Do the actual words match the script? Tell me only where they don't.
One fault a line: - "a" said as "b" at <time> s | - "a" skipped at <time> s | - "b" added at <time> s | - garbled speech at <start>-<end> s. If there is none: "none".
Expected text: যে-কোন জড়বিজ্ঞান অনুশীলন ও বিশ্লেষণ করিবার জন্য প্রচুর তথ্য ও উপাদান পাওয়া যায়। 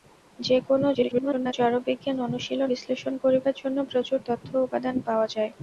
- garbled speech at 0.9-1.5 s
- "ও" skipped at 2.7 s